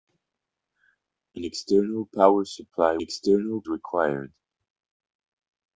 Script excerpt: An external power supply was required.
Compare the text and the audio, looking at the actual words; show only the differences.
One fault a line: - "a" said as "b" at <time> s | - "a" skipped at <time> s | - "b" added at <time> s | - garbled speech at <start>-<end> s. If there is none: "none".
- "was" said as "external" at 3.0 s